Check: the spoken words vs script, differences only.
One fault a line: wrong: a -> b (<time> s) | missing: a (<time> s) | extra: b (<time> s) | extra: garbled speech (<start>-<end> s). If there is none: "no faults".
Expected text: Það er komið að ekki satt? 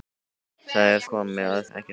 no faults